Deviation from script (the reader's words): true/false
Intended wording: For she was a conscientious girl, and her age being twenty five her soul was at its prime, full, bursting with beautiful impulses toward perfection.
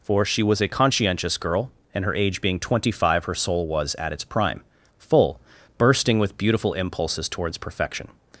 true